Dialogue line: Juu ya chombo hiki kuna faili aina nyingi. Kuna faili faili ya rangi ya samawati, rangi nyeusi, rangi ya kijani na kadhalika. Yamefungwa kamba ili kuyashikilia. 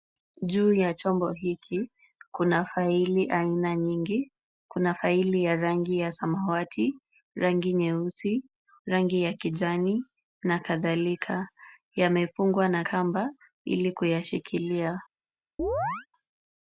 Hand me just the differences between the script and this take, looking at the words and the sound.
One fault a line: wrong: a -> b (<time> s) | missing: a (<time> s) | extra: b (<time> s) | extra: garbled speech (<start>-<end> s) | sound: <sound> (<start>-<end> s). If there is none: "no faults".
missing: faili (5.4 s)
extra: na (12.7 s)
sound: chirp (15.6-16.1 s)